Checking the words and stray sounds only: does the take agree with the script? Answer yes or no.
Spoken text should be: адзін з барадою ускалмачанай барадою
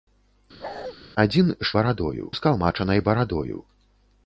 no